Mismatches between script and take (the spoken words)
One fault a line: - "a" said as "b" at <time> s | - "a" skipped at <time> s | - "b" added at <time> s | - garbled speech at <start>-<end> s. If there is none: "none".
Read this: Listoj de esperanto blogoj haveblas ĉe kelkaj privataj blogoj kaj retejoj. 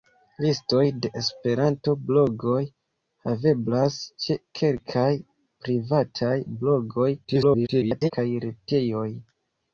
- garbled speech at 7.2-8.1 s